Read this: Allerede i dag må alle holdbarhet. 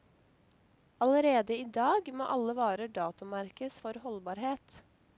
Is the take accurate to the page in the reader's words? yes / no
no